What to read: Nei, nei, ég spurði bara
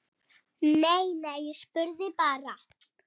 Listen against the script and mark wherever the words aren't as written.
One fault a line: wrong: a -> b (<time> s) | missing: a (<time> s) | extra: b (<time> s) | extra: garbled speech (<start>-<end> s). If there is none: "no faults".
no faults